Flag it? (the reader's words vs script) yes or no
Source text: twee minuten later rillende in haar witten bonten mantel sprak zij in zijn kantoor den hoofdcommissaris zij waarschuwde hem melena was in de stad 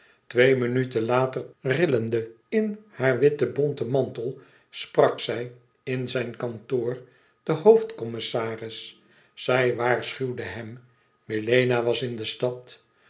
no